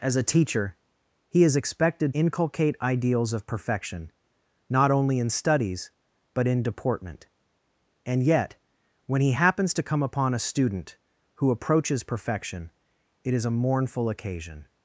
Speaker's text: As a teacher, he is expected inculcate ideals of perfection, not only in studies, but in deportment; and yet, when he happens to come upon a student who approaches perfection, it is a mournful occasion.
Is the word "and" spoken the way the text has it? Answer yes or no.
yes